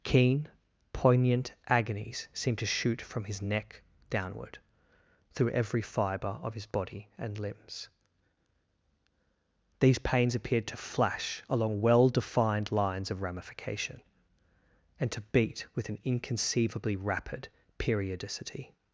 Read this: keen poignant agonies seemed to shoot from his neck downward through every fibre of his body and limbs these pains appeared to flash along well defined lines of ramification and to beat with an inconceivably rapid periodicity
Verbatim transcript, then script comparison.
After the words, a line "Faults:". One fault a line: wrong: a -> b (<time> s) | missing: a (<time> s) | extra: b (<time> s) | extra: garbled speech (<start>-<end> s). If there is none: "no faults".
keen poignant agonies seemed to shoot from his neck downward through every fibre of his body and limbs these pains appeared to flash along well defined lines of ramification and to beat with an inconceivably rapid periodicity
Faults:
no faults